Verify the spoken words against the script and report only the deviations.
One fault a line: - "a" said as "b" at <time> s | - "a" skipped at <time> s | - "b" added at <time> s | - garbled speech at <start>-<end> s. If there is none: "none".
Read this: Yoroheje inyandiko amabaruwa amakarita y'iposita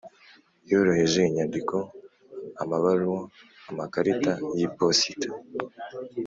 none